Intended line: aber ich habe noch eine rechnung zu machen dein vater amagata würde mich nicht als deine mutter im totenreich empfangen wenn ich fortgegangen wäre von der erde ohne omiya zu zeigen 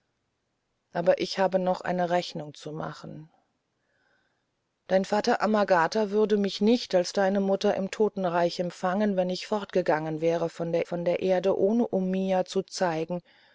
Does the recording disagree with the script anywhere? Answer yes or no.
yes